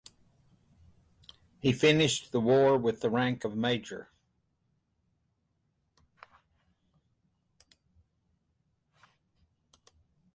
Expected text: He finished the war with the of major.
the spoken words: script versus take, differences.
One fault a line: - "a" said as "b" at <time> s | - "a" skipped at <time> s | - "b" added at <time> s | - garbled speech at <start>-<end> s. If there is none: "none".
- "rank" added at 3.1 s